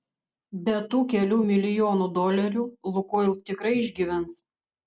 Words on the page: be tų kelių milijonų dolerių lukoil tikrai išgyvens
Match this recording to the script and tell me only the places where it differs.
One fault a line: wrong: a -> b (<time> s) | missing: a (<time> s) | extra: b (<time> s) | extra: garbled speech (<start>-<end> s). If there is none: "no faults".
no faults